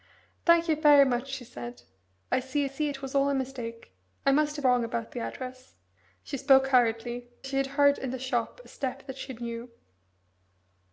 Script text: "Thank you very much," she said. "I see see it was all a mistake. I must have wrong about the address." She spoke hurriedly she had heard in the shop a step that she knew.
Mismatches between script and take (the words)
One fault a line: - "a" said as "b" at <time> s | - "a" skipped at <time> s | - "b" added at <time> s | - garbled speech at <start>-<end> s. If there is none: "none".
none